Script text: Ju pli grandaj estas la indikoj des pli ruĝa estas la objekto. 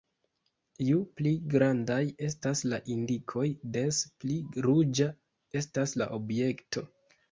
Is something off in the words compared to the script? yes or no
no